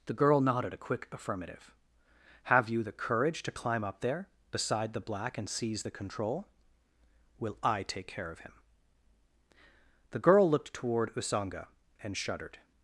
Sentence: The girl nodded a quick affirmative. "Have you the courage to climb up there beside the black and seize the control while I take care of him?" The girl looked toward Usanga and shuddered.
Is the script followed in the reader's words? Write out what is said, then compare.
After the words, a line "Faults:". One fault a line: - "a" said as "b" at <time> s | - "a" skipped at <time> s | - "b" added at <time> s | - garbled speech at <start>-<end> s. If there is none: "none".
The girl nodded a quick affirmative. "Have you the courage to climb up there beside the black and seize the control will I take care of him?" The girl looked toward Usanga and shuddered.
Faults:
- "while" said as "will" at 7.4 s